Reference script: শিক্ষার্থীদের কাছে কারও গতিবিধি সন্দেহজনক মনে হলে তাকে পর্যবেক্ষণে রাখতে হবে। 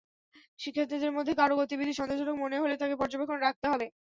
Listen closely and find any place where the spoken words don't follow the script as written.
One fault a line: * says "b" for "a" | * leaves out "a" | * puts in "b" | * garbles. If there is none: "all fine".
* says "মধ্যে" for "কাছে"